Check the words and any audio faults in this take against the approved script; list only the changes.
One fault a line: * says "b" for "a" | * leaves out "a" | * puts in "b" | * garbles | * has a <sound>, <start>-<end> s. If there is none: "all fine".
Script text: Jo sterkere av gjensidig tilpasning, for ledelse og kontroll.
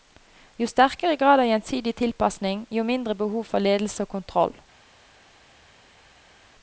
* puts in "grad"
* puts in "jo mindre behov"